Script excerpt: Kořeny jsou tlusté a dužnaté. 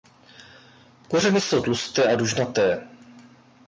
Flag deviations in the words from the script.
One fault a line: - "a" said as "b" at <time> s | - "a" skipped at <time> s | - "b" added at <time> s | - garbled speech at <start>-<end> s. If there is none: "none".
none